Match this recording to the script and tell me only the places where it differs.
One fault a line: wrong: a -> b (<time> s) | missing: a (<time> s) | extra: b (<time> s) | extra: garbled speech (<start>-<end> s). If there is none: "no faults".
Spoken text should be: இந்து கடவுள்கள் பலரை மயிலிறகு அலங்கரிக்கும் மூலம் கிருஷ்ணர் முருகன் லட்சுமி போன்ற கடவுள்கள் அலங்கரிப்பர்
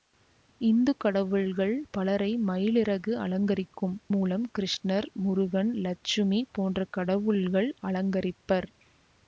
no faults